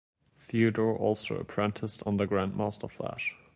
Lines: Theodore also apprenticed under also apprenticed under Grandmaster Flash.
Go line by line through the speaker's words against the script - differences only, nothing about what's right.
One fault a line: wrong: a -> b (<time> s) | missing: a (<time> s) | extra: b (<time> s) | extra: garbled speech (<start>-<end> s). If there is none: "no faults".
missing: also apprenticed under (2.2 s)